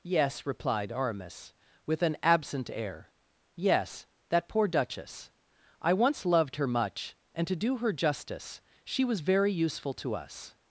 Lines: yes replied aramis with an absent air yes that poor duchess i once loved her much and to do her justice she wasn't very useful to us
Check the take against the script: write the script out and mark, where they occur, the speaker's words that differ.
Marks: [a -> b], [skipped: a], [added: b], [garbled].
yes replied aramis with an absent air yes that poor duchess i once loved her much and to do her justice she [wasn't -> was] very useful to us